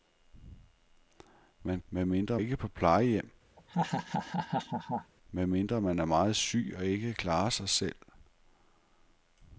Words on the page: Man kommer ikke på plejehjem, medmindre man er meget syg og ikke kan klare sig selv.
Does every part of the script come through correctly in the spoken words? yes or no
no